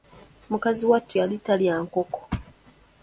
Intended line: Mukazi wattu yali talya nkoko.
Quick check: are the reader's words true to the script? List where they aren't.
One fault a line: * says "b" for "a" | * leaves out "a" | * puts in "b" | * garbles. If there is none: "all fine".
all fine